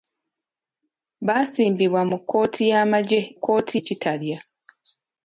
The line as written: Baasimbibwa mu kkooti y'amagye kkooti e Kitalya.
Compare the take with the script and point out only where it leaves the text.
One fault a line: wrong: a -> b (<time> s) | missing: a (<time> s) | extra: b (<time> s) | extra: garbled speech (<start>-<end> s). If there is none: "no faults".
no faults